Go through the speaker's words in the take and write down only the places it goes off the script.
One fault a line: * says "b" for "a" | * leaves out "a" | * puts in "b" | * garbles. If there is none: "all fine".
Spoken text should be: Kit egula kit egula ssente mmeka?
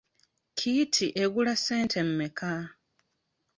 * leaves out "kit egula"